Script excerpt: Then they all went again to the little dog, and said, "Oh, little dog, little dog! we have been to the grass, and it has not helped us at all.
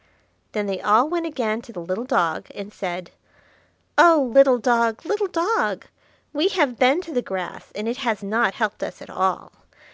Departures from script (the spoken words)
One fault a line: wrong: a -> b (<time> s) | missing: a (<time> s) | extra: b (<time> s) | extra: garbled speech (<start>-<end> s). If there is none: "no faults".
no faults